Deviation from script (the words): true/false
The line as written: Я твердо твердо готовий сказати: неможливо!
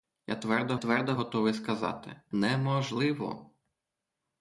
false